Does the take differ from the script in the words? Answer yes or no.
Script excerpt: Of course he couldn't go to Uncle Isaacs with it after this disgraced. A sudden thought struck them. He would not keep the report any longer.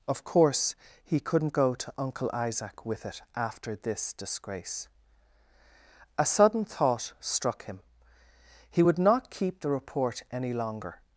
yes